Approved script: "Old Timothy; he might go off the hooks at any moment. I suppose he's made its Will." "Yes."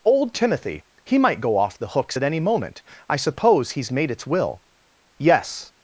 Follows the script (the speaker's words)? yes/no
yes